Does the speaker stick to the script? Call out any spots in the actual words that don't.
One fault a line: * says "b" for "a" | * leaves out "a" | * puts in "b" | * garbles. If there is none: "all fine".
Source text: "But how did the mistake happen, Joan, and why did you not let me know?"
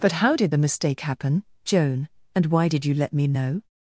* leaves out "not"